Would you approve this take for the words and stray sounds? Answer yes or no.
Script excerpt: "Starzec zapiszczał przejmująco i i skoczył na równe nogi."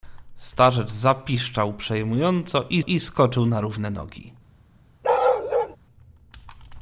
no